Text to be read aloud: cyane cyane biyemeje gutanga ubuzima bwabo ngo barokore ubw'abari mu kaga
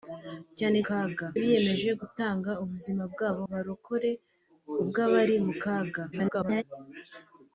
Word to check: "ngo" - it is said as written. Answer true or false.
false